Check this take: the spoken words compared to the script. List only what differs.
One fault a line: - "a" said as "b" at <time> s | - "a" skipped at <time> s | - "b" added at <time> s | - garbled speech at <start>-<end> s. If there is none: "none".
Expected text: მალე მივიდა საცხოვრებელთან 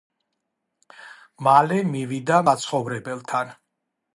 none